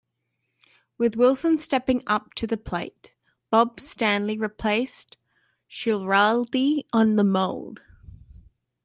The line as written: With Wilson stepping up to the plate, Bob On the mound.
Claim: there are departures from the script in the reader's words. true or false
true